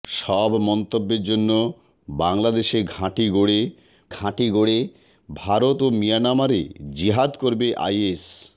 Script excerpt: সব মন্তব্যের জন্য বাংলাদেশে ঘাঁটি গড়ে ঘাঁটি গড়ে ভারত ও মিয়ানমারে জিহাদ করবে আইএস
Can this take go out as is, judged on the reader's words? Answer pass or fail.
pass